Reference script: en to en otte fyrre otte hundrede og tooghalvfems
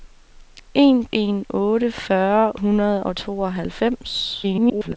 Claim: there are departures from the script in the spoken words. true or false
true